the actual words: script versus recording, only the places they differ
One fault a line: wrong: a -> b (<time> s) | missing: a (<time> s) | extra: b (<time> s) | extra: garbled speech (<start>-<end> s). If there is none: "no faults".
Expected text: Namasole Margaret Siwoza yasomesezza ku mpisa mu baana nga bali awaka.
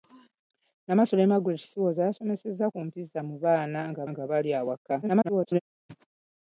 extra: nga (4.1 s)
extra: garbled speech (5.0-5.6 s)